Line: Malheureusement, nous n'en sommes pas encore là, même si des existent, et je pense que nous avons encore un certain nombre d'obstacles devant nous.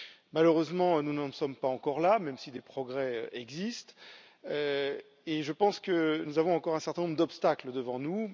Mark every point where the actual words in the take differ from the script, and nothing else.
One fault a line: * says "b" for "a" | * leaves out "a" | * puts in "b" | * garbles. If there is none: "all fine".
* puts in "progrès"